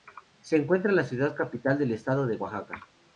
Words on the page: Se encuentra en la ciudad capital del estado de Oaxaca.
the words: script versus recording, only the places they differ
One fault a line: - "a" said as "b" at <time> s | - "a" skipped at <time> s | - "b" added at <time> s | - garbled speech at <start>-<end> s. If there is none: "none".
none